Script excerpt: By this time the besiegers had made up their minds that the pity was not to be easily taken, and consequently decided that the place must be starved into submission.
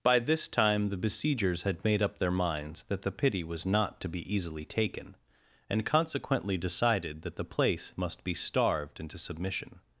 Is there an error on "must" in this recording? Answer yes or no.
no